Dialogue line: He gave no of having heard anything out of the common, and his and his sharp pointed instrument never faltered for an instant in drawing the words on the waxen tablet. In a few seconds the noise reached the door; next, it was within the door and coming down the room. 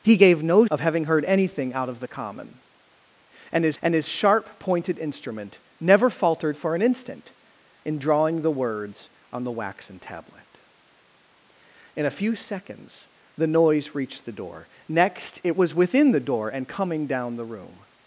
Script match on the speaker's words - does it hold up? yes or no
yes